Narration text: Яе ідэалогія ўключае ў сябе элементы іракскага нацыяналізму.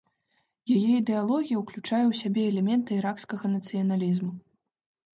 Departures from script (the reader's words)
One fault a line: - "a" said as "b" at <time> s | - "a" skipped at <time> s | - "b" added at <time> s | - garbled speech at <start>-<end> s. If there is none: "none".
none